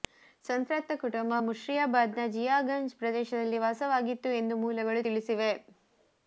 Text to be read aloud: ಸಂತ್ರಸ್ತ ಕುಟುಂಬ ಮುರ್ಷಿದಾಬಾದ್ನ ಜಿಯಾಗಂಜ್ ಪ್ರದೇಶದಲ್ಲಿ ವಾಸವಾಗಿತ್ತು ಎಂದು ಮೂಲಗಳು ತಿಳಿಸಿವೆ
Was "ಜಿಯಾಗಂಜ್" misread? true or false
false